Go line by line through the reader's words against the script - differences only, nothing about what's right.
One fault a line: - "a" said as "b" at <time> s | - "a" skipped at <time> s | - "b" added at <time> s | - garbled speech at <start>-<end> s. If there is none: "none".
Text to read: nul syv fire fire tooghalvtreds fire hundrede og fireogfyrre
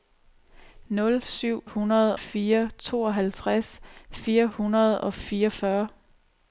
- "fire" said as "hundrede" at 1.6 s